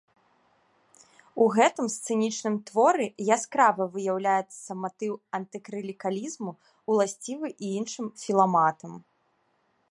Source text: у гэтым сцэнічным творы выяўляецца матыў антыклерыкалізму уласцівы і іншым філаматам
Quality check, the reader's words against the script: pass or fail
fail